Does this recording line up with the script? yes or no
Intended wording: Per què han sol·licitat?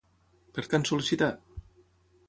yes